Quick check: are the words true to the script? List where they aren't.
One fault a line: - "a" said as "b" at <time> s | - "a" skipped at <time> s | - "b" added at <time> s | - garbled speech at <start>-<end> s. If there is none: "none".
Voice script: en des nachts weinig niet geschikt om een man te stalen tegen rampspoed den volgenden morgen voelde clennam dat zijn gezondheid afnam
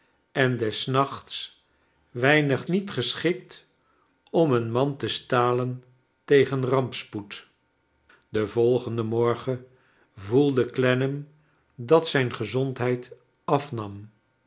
none